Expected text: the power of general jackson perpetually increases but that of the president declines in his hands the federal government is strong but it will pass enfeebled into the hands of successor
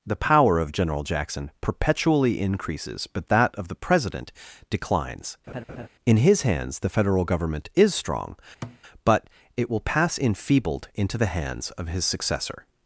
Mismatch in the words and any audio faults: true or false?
true